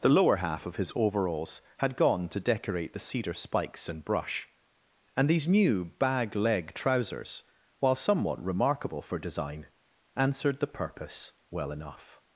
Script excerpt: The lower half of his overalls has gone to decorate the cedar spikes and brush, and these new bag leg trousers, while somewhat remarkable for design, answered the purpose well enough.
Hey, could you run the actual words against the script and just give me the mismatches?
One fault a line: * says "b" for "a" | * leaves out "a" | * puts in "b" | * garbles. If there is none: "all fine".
* says "had" for "has"